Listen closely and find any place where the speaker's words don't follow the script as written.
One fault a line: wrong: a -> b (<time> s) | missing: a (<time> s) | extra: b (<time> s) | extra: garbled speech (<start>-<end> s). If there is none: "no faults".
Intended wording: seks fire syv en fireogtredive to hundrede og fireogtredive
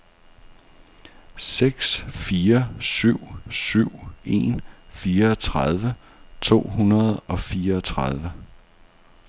extra: syv (3.5 s)